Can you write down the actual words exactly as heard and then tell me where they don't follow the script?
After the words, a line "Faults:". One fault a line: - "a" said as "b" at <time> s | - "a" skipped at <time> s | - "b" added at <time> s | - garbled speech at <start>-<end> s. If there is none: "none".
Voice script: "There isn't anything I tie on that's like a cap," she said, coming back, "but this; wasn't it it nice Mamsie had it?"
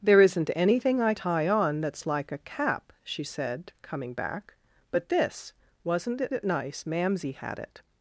"There isn't anything I tie on that's like a cap," she said, coming back, "but this; wasn't it it nice Mamsie had it?"
Faults:
none